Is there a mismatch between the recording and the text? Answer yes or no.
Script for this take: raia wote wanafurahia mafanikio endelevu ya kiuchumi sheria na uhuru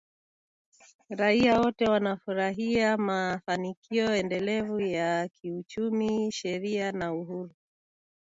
no